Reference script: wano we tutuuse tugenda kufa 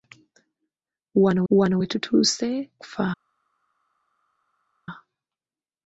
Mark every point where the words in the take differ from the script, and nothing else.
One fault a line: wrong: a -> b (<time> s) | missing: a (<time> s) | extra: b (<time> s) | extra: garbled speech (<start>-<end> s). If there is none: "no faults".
extra: wano (1.5 s)
missing: tugenda (2.7 s)